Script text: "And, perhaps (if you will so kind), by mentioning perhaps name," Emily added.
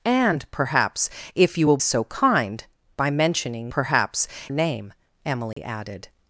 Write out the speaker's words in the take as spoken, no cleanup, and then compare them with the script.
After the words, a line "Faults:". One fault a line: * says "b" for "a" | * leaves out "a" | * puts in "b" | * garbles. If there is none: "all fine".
"And, perhaps (if you will so kind), by mentioning perhaps name," Emily added.
Faults:
all fine